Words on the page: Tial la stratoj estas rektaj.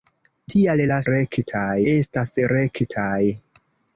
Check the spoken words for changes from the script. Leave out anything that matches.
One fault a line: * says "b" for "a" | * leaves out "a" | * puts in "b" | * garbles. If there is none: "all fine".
* says "rektaj" for "stratoj"